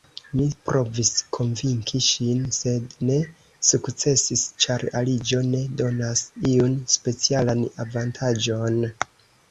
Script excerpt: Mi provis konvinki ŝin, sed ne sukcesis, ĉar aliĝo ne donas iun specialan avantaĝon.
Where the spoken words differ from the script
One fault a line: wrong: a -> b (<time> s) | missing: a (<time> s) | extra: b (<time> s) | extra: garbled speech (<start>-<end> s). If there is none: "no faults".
no faults